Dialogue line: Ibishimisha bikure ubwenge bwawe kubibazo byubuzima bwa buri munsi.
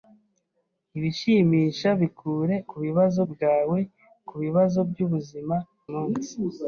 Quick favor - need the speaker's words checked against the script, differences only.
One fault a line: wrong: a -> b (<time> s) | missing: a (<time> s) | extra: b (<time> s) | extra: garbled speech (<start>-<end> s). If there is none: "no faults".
wrong: ubwenge -> kubibazo (2.7 s)
missing: bwa buri (5.6 s)